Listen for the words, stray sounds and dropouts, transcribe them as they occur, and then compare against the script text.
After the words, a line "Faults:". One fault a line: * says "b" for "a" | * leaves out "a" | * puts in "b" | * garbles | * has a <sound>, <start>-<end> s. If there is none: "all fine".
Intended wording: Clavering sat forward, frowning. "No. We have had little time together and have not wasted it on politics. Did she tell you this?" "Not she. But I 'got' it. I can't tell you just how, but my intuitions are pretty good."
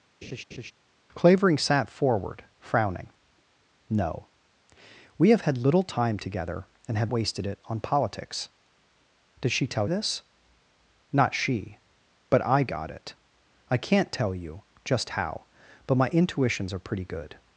Clavering sat forward, frowning. "No. We have had little time together and have wasted it on politics. Did she tell this?" "Not she. But I 'got' it. I can't tell you just how, but my intuitions are pretty good."
Faults:
* has a laugh, 0.2-0.7 s
* leaves out "not"
* leaves out "you"